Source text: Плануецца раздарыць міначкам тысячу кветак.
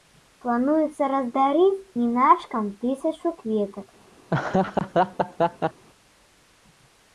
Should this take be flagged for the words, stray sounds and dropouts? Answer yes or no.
yes